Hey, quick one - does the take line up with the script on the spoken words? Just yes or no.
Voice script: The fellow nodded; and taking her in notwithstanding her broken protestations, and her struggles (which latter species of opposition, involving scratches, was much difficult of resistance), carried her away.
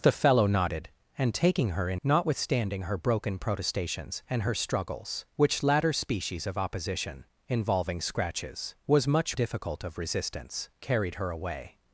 yes